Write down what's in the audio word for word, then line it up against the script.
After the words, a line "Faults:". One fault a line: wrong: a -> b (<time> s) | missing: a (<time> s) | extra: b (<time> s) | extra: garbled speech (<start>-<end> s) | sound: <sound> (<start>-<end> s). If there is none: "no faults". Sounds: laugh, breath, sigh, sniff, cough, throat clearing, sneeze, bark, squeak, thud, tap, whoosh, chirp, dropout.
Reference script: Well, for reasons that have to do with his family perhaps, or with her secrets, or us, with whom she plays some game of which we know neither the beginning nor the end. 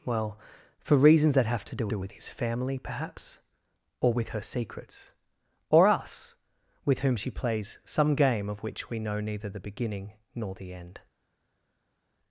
Well, for reasons that have to do do with his family perhaps, or with her secrets, or us, with whom she plays some game of which we know neither the beginning nor the end.
Faults:
extra: do (1.9 s)